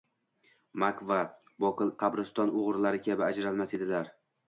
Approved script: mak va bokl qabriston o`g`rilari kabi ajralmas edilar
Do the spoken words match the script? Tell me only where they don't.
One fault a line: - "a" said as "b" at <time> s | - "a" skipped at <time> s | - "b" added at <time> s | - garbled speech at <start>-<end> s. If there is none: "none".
none